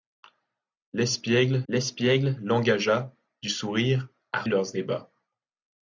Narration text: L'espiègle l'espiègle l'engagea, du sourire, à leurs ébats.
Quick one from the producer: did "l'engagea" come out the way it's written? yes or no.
yes